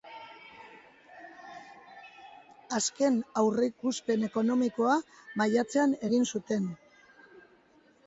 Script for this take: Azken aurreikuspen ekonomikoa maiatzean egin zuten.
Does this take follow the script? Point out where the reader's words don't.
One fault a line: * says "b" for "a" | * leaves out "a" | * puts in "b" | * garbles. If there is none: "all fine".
all fine